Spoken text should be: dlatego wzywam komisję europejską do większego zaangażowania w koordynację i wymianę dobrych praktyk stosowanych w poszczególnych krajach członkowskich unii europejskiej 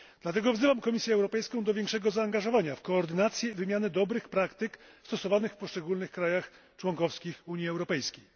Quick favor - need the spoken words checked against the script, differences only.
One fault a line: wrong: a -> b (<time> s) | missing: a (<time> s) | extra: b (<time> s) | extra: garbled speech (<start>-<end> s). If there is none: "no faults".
no faults